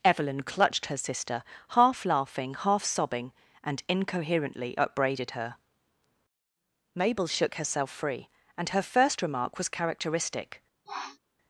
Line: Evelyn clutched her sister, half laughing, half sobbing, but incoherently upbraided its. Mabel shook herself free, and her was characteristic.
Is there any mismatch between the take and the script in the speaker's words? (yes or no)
yes